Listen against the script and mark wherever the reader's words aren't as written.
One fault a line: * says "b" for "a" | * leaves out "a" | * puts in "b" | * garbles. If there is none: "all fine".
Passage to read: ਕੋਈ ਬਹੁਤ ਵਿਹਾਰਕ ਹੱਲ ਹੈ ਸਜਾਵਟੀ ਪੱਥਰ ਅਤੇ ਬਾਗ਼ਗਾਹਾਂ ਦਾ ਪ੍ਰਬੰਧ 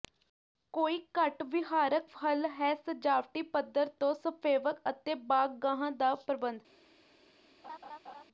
* says "ਘੱਟ" for "ਬਹੁਤ"
* puts in "ਤੋਂ ਸਫੇਵਕ"